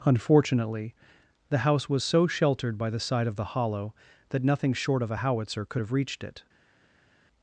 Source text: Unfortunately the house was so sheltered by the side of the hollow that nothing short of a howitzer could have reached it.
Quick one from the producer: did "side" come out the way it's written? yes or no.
yes